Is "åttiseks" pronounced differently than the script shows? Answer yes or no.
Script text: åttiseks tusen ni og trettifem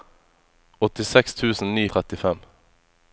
no